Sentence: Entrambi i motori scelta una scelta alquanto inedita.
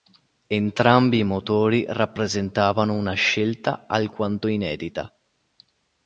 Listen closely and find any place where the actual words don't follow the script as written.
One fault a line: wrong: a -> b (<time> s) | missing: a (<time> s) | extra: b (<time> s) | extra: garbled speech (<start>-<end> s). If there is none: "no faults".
wrong: scelta -> rappresentavano (1.8 s)